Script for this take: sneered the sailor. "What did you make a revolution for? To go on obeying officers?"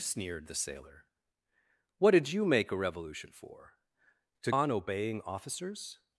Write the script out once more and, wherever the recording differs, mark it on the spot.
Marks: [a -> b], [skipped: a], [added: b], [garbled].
sneered the sailor. "What did you make a revolution for? To [skipped: go] on obeying officers?"